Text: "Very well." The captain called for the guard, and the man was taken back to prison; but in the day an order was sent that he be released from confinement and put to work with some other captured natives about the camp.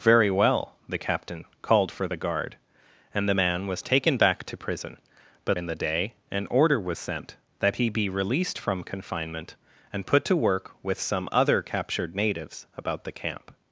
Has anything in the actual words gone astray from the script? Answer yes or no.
no